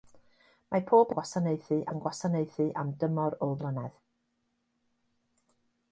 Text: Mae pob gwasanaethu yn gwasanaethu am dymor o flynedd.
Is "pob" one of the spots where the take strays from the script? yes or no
no